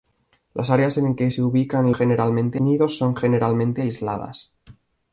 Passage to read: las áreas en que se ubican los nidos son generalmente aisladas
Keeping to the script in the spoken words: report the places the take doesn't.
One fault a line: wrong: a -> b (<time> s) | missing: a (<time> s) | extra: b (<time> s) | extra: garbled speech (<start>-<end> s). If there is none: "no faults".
wrong: los -> generalmente (1.9 s)